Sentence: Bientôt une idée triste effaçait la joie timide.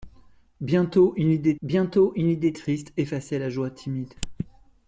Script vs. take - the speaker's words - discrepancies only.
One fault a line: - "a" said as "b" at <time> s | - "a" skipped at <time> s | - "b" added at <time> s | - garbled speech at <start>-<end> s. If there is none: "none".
- "bientôt une idée" added at 1.6 s